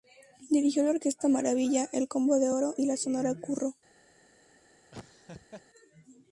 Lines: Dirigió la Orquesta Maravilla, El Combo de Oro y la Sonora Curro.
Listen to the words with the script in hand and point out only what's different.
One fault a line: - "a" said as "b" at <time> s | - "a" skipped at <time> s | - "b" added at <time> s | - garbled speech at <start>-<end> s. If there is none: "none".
none